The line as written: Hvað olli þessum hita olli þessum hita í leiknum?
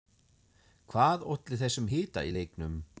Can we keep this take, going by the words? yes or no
no